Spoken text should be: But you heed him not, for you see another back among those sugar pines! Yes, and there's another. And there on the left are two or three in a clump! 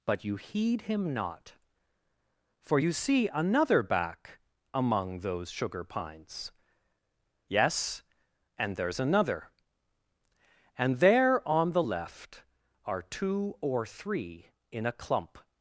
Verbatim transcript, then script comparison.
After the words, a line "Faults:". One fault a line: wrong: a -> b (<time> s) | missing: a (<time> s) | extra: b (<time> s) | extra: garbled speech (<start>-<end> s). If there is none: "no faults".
But you heed him not, for you see another back among those sugar pines! Yes, and there's another. And there on the left are two or three in a clump!
Faults:
no faults